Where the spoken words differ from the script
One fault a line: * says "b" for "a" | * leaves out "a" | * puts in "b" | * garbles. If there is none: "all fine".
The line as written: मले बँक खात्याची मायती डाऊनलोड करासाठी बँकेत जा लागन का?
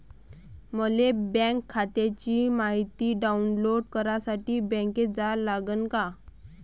all fine